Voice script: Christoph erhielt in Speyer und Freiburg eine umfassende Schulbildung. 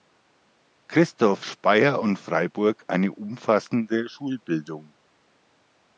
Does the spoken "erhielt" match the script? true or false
false